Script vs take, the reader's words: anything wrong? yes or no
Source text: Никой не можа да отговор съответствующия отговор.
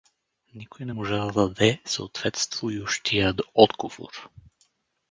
yes